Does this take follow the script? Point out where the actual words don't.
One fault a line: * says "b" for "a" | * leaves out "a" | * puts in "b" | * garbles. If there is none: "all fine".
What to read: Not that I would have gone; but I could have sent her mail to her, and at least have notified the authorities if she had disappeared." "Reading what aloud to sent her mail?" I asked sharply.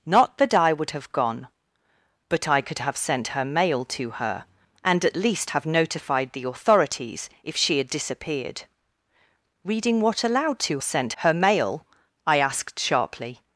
all fine